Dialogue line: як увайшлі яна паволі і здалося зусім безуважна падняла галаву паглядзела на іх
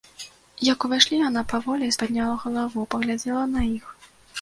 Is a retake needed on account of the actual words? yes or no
yes